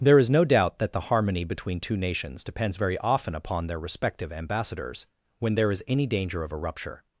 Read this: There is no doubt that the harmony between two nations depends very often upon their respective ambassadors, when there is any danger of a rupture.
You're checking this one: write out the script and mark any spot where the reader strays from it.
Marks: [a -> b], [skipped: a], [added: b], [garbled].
There is no doubt that the harmony between two nations depends very often upon their respective ambassadors, when there is any danger of a rupture.